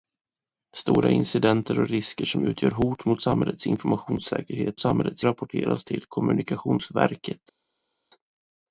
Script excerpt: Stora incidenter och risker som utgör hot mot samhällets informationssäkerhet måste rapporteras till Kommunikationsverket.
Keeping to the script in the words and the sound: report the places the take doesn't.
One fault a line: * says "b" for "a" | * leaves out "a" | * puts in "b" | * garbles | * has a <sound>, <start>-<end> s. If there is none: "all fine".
* says "samhällets" for "måste"